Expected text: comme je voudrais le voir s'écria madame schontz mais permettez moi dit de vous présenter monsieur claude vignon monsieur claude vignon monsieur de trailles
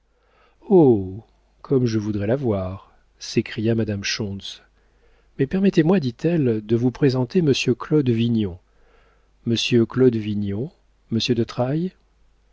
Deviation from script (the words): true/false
true